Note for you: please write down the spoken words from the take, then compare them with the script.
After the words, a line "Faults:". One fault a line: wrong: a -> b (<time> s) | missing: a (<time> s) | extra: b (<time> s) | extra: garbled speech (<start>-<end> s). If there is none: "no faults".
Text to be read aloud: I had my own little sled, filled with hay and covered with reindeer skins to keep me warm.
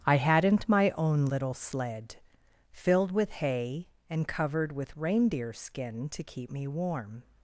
I hadn't my own little sled, filled with hay and covered with reindeer skin to keep me warm.
Faults:
wrong: had -> hadn't (0.2 s)
wrong: skins -> skin (5.5 s)